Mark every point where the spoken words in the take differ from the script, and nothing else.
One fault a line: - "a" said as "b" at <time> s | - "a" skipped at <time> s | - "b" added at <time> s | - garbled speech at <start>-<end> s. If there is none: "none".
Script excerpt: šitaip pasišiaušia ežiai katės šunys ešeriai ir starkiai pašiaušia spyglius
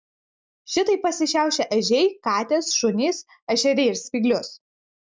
- "starkiai pašiaušia" skipped at 4.0 s